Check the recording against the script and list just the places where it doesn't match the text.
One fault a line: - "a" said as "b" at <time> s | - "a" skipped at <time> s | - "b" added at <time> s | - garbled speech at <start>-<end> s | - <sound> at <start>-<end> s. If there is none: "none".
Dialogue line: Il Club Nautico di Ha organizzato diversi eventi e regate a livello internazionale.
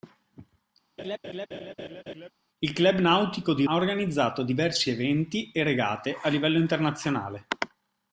- laugh at 1.0-2.3 s